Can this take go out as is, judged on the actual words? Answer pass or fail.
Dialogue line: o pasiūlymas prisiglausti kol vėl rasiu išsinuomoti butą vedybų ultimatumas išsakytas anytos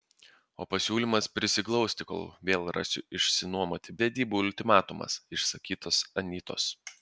fail